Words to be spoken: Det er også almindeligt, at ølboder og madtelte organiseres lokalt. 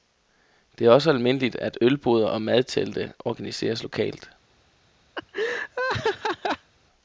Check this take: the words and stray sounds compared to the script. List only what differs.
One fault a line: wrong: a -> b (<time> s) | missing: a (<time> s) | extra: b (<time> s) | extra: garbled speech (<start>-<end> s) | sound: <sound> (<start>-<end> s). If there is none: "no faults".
sound: laugh (5.2-6.7 s)